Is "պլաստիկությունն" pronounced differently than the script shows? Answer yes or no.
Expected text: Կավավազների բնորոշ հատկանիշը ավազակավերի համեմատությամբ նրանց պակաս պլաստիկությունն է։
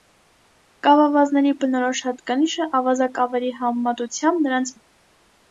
yes